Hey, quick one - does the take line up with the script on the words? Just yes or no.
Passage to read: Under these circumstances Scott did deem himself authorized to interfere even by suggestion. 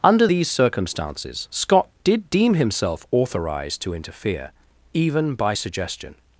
yes